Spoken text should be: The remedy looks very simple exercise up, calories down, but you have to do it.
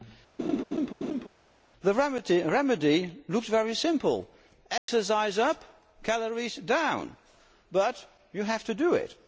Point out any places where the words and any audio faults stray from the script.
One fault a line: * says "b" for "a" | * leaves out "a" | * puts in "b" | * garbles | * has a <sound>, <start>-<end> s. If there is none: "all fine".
* has a laugh, 0.4-1.3 s
* has a dropout, 4.8-4.9 s